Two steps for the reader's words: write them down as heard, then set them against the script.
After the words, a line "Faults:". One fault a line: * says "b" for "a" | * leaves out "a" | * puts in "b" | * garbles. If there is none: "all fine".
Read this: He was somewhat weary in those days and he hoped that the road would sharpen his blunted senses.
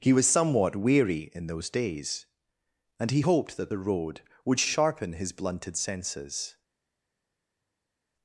He was somewhat weary in those days and he hoped that the road would sharpen his blunted senses.
Faults:
all fine